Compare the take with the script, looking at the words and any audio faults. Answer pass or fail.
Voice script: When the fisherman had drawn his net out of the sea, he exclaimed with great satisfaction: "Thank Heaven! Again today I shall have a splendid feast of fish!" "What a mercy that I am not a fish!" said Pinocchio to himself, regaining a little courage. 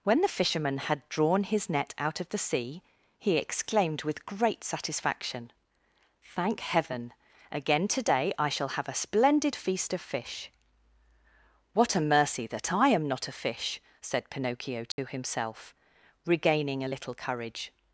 fail